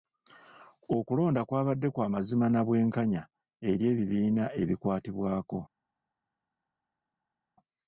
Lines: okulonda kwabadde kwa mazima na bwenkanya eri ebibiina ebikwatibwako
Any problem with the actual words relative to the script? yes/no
no